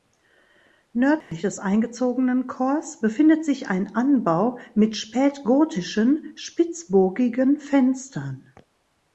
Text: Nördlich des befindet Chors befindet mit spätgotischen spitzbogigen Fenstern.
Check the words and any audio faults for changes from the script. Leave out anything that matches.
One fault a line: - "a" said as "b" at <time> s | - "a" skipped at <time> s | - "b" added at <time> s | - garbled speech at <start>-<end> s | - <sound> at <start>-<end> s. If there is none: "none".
- dropout at 1.2-1.3 s
- "befindet" said as "eingezogenen" at 1.6 s
- "sich ein Anbau" added at 3.4 s